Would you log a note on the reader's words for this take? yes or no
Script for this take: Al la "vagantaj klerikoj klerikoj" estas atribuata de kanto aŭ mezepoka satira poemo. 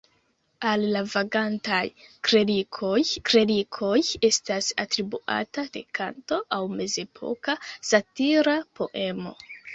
no